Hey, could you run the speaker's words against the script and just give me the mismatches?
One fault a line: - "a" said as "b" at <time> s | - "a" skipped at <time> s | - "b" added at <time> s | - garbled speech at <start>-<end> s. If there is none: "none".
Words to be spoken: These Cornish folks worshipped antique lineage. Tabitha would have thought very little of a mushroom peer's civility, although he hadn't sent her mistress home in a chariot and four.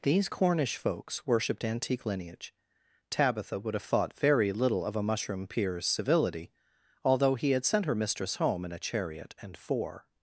- "hadn't" said as "had" at 7.5 s